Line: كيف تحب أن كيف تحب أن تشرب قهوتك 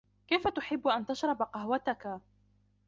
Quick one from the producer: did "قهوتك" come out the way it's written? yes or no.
yes